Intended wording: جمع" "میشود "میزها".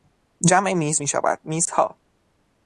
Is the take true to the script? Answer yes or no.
no